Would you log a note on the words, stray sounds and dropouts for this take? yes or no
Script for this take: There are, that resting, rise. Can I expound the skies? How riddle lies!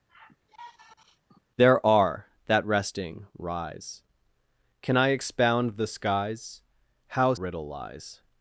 yes